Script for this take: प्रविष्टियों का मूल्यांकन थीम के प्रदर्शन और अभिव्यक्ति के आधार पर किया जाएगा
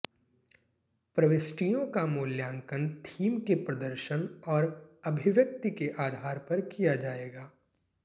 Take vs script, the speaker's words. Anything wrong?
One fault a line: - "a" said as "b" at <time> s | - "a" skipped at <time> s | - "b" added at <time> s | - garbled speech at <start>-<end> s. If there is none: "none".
none